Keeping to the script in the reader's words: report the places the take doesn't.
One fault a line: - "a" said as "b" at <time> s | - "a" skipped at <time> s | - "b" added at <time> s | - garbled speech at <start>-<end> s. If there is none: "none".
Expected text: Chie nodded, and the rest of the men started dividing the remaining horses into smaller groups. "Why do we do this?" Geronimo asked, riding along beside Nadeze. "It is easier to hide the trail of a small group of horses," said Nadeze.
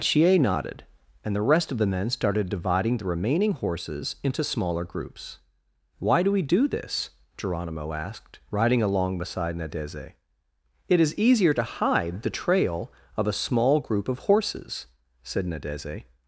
none